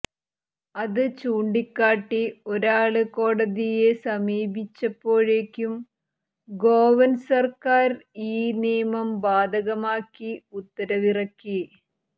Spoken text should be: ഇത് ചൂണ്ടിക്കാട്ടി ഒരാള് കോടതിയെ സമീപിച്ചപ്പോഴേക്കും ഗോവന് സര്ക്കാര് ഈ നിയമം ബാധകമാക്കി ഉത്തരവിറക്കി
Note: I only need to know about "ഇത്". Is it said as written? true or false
false